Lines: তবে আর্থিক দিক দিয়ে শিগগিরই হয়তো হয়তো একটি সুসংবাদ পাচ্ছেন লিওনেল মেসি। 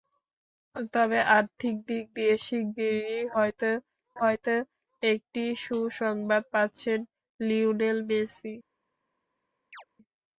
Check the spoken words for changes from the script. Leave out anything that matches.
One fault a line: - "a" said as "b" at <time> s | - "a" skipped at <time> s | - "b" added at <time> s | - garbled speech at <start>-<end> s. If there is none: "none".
none